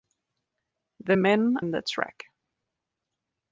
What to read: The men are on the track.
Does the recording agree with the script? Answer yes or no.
no